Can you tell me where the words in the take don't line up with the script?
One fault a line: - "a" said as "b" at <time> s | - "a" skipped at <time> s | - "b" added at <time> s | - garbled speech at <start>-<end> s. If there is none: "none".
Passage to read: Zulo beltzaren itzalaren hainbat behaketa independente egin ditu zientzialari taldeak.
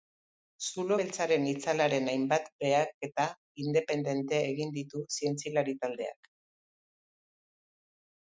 none